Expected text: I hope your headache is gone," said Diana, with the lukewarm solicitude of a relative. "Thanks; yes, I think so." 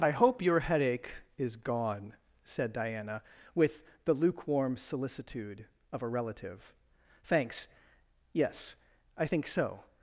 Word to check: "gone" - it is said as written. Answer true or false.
true